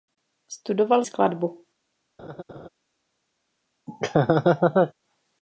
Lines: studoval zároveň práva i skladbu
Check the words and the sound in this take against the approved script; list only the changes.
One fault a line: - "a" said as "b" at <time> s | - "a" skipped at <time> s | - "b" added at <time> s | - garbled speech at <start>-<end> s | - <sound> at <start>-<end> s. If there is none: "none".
- "zároveň práva i" skipped at 1.0 s
- laugh at 2.2-2.7 s
- laugh at 3.9-4.9 s